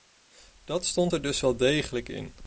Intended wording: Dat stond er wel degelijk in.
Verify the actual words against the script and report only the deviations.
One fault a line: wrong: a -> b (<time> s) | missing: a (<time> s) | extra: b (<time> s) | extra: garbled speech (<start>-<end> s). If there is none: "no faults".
extra: dus (1.2 s)